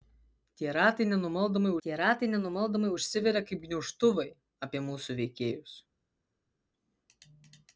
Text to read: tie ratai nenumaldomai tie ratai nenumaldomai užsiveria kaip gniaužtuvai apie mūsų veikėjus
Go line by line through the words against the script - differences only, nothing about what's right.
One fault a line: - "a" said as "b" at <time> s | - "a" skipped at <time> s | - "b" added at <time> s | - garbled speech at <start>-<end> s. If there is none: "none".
none